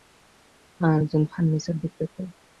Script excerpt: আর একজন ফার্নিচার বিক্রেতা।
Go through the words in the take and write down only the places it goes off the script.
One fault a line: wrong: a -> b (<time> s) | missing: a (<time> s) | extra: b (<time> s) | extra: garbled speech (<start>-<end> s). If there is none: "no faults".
no faults